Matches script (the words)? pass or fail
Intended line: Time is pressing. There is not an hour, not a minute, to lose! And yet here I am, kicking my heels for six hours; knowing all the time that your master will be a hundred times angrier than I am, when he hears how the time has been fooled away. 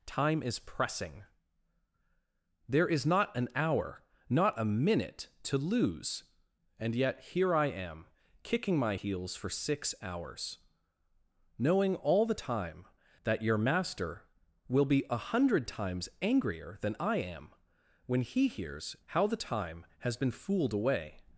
pass